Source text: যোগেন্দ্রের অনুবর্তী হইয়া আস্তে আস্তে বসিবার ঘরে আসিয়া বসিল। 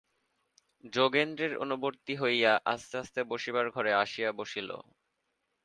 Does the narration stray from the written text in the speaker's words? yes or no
no